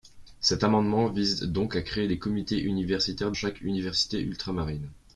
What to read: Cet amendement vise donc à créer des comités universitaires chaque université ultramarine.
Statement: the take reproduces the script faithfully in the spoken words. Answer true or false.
true